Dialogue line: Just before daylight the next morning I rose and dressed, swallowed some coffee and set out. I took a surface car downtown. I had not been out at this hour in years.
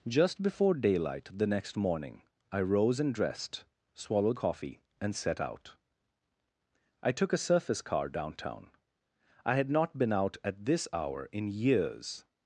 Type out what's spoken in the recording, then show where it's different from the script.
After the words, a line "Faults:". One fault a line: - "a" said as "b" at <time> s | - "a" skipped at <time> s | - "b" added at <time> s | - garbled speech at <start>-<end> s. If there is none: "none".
Just before daylight the next morning I rose and dressed, swallowed coffee and set out. I took a surface car downtown. I had not been out at this hour in years.
Faults:
- "some" skipped at 4.4 s